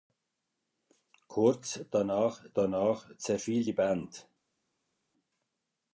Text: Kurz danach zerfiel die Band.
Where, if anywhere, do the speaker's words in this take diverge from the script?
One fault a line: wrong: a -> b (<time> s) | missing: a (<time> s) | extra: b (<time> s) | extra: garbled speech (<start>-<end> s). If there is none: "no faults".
extra: danach (2.5 s)